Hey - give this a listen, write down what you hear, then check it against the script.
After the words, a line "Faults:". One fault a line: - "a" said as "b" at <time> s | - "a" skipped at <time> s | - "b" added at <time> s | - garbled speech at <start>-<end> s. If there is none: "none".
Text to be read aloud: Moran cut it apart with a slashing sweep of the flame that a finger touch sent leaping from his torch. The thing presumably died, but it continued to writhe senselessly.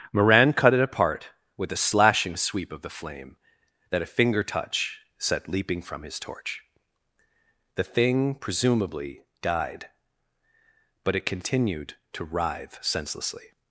Moran cut it apart with a slashing sweep of the flame that a finger touch set leaping from his torch. The thing presumably died, but it continued to writhe senselessly.
Faults:
- "sent" said as "set" at 5.2 s